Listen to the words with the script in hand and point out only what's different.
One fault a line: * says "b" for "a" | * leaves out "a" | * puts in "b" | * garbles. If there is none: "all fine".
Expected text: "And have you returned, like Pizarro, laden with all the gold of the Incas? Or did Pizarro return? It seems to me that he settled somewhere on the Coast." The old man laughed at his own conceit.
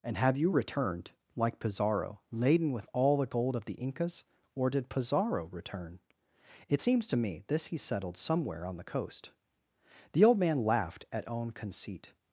* says "this" for "that"
* leaves out "his"